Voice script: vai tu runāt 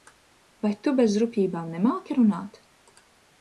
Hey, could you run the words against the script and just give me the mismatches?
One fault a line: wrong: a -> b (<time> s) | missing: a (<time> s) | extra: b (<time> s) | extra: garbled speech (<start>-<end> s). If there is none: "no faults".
extra: bez rupjībām nemāki (1.0 s)